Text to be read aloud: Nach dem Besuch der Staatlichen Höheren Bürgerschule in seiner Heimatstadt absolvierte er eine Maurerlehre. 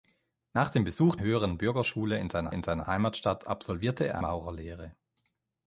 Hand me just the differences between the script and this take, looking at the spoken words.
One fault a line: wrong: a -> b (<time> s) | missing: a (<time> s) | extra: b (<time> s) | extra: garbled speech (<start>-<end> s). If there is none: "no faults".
missing: der Staatlichen (1.1 s)
extra: in seiner (2.5 s)
missing: eine (4.2 s)